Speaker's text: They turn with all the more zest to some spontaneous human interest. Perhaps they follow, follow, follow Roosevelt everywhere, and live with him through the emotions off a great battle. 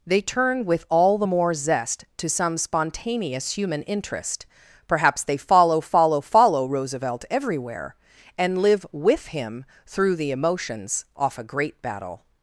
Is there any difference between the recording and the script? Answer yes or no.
no